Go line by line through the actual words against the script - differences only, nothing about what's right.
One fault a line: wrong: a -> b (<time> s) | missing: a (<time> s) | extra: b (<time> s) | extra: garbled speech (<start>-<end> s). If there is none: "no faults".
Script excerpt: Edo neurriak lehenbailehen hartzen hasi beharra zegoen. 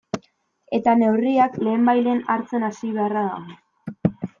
wrong: Edo -> Eta (0.8 s)
wrong: zegoen -> dago (3.3 s)